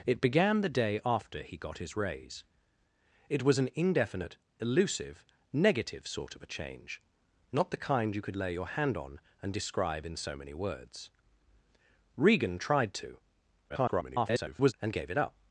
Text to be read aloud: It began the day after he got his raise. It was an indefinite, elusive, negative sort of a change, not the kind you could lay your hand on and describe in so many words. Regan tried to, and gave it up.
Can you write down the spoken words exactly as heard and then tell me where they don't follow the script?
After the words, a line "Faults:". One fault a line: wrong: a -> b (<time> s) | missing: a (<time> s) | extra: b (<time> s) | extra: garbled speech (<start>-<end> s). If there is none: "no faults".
It began the day after he got his raise. It was an indefinite, elusive, negative sort of a change, not the kind you could lay your hand on and describe in so many words. Regan tried to, [garbled] and gave it up.
Faults:
extra: garbled speech (13.7-14.7 s)